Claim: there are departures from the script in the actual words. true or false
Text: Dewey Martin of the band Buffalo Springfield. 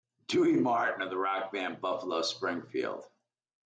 true